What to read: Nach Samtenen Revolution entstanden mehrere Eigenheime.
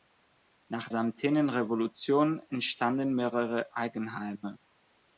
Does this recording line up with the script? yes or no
yes